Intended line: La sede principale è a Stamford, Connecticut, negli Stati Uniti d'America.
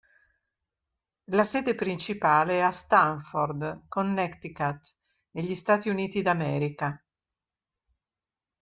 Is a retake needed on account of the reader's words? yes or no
no